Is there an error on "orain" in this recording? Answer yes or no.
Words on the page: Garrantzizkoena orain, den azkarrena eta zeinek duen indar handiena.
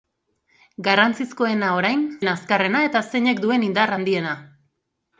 no